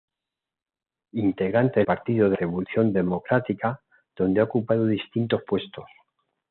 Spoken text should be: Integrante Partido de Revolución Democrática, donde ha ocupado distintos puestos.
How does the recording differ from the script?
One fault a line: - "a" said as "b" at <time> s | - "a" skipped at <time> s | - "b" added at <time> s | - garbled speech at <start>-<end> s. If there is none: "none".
none